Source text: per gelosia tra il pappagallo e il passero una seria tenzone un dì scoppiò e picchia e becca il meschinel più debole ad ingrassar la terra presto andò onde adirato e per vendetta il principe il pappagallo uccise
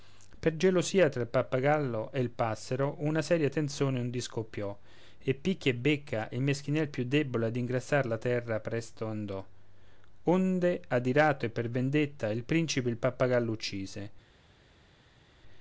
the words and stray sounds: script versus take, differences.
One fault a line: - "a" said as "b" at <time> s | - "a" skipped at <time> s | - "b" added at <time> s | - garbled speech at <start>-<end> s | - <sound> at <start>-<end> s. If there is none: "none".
none